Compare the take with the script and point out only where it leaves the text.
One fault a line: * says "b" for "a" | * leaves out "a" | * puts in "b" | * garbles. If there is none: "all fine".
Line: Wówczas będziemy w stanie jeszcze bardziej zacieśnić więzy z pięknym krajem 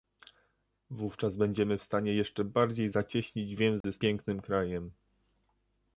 all fine